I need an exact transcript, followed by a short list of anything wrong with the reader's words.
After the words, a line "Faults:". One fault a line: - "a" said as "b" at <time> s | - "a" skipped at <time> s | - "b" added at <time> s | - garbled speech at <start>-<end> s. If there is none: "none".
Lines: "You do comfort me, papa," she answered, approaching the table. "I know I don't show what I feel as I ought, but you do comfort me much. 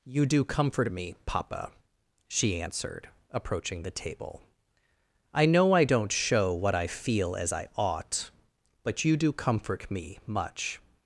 "You do comfort me, papa," she answered, approaching the table. "I know I don't show what I feel as I ought, but you do comfort me much.
Faults:
none